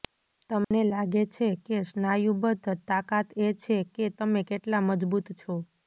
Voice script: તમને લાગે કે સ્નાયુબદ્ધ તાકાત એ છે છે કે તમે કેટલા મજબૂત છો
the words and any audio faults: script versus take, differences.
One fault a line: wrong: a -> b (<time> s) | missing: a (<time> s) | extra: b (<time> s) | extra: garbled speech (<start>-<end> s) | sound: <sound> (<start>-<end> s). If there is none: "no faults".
sound: dropout (0.6-0.7 s)
extra: છે (1.3 s)
missing: છે (3.8 s)